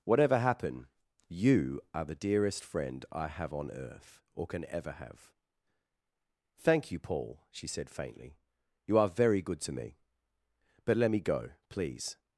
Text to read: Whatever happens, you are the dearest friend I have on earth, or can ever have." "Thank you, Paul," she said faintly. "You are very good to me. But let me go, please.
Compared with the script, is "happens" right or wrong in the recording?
wrong